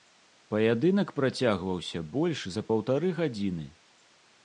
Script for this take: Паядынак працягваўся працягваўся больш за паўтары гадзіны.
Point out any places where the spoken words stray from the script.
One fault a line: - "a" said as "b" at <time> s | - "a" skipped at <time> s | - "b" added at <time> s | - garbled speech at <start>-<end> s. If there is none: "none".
- "працягваўся" skipped at 2.0 s